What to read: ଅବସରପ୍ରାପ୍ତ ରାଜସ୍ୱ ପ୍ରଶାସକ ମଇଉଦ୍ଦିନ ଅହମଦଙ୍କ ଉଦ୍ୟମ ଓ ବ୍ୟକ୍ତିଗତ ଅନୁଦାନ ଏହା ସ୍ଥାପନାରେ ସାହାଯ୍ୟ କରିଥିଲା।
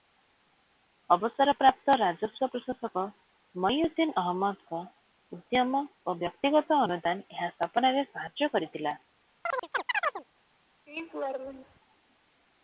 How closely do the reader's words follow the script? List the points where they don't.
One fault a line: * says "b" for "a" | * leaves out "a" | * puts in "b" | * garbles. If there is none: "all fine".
all fine